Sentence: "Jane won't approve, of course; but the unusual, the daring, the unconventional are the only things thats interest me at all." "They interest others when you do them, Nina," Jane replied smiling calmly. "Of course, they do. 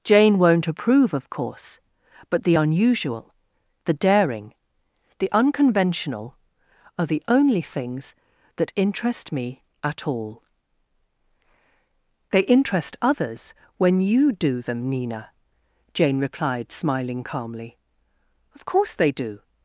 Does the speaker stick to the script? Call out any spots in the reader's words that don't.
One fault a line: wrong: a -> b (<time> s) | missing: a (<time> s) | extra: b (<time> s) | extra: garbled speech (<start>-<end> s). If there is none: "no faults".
wrong: thats -> that (8.6 s)